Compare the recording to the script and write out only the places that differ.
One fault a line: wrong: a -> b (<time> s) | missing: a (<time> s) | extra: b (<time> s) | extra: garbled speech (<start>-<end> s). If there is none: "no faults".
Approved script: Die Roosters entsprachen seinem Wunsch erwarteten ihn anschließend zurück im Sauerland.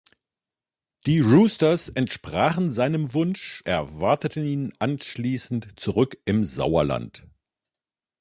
no faults